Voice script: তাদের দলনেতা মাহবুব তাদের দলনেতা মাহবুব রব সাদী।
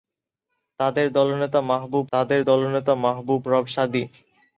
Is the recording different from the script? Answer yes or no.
no